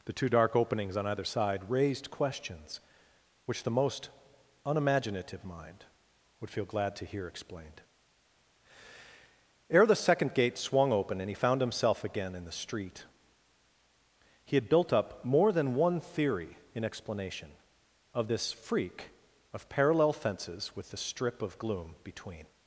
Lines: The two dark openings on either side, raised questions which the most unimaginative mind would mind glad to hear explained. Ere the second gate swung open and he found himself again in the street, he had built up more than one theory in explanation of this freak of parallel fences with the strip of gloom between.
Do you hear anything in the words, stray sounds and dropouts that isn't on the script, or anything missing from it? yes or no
yes